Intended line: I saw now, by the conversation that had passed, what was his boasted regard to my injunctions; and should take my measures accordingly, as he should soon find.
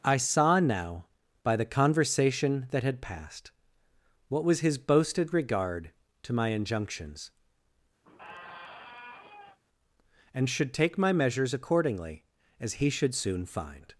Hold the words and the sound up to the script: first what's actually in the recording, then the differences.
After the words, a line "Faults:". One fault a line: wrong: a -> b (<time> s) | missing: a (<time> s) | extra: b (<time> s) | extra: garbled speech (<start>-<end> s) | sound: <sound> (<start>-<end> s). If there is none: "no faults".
I saw now, by the conversation that had passed, what was his boasted regard to my injunctions; and should take my measures accordingly, as he should soon find.
Faults:
sound: squeak (8.0-9.6 s)